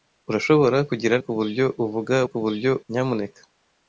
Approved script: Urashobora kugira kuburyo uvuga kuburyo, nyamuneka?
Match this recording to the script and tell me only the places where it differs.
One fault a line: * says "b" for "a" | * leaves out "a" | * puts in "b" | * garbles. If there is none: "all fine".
all fine